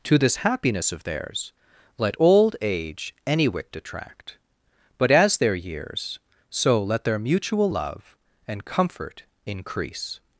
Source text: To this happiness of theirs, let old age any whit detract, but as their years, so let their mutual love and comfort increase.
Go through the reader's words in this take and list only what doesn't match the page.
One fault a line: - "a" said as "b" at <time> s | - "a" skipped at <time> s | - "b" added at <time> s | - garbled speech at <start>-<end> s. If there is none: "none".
none